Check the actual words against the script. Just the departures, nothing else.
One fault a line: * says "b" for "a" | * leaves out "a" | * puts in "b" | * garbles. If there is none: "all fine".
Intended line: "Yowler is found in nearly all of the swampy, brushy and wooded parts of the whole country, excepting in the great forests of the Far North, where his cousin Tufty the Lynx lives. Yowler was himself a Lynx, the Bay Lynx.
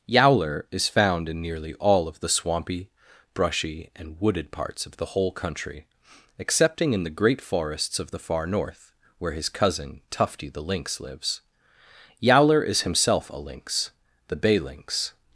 * says "is" for "was"